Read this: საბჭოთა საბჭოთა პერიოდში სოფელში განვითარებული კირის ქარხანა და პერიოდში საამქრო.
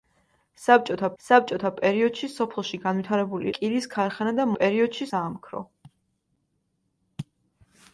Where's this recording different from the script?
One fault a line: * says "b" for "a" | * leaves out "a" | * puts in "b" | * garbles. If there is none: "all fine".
all fine